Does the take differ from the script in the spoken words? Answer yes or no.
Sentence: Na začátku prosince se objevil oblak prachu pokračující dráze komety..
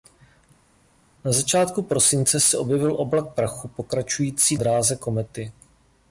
no